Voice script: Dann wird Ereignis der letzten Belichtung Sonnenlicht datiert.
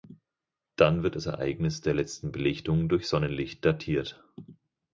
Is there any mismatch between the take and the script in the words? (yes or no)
yes